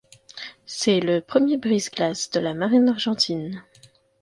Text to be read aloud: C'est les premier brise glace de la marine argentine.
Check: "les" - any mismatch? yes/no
yes